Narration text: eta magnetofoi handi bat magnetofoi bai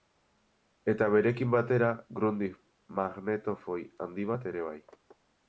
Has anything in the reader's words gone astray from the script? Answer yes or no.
yes